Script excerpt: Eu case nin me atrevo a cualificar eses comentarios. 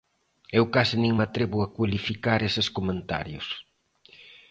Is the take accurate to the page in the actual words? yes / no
yes